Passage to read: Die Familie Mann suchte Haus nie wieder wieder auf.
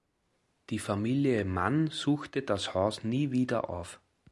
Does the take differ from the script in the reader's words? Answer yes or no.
yes